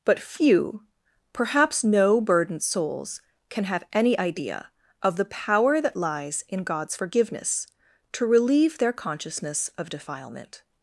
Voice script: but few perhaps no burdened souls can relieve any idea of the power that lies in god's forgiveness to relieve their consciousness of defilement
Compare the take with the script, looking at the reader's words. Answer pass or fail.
fail